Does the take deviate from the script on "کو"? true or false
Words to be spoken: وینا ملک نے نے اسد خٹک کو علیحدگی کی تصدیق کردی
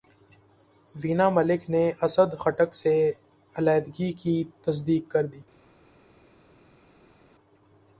true